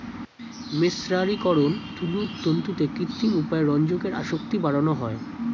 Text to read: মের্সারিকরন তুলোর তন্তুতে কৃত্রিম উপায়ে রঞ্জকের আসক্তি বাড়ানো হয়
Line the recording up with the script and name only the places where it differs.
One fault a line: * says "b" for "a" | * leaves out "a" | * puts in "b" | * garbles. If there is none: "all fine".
all fine